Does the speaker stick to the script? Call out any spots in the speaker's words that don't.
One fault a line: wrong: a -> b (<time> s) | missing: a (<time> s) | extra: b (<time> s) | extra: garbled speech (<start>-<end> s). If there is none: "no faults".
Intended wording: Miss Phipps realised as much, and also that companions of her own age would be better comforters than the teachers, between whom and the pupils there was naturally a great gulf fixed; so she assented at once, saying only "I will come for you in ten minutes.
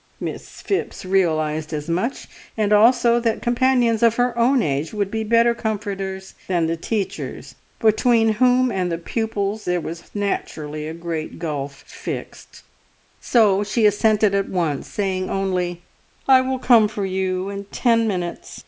no faults